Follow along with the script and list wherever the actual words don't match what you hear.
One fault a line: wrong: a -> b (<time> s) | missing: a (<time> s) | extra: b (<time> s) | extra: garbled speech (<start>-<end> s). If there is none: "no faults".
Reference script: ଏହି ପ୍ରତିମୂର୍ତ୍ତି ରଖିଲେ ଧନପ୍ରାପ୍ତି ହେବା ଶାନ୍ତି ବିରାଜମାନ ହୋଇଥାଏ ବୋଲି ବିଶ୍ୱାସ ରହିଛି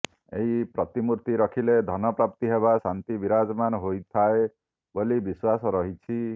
no faults